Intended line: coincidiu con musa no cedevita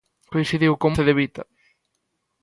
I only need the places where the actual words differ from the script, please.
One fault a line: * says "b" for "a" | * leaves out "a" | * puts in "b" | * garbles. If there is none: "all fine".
* leaves out "musa no"